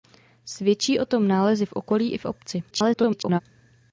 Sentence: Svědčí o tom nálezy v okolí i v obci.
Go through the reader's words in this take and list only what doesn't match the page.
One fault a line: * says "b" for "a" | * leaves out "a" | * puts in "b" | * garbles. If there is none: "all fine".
* garbles